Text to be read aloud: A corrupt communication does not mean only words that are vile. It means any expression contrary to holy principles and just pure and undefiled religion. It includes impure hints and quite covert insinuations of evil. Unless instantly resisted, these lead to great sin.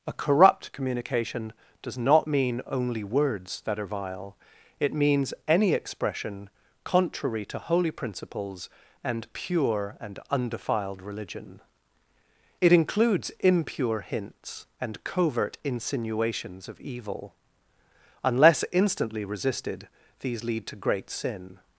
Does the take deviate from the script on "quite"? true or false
true